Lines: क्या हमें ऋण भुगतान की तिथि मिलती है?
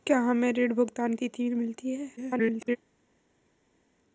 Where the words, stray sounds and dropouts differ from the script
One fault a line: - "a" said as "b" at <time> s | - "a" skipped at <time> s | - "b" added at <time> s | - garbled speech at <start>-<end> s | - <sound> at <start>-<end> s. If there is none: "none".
- "की" skipped at 1.1 s
- garbled speech at 2.2-2.8 s